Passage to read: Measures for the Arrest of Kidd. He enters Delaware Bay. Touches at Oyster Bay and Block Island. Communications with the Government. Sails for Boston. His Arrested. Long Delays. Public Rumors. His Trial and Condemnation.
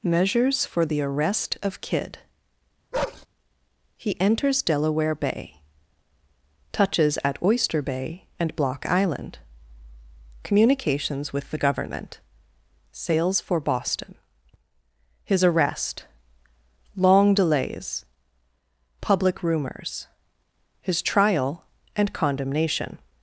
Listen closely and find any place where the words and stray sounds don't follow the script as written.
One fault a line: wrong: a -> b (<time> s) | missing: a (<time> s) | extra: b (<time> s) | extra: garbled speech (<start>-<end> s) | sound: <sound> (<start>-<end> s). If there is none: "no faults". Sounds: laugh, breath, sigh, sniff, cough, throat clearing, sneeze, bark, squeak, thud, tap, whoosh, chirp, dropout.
sound: bark (2.9-3.3 s)
wrong: Arrested -> Arrest (15.4 s)